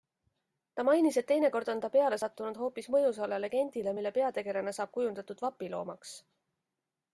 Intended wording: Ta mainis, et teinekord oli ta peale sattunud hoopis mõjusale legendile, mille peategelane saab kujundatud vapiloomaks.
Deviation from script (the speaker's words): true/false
true